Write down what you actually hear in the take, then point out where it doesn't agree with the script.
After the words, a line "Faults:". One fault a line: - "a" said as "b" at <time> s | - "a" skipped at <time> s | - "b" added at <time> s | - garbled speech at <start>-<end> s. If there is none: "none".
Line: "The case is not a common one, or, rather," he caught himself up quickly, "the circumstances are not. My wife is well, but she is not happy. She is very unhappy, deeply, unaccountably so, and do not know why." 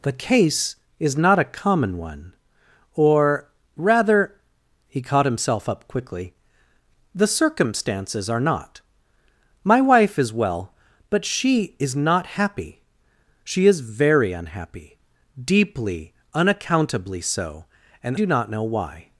"The case is not a common one, or, rather," he caught himself up quickly, "the circumstances are not. My wife is well, but she is not happy. She is very unhappy, deeply, unaccountably so, and do not know why."
Faults:
none